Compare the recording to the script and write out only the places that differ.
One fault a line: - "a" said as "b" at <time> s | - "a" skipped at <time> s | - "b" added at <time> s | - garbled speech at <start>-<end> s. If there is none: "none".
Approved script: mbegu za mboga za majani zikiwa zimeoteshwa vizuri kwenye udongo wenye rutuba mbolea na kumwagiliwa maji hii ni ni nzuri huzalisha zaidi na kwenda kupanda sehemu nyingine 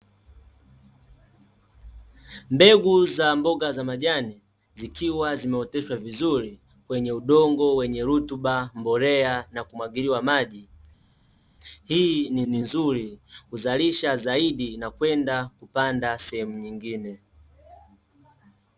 none